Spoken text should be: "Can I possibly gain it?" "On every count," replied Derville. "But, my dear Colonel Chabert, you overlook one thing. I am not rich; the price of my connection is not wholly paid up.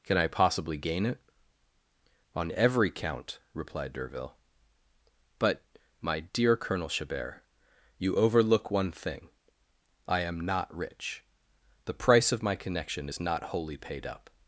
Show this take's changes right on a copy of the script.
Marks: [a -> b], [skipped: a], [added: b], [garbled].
"Can I possibly gain it?" "On every count," replied Derville. "But, my dear Colonel Chabert, you overlook one thing. I am not rich; the price of my connection is not wholly paid up.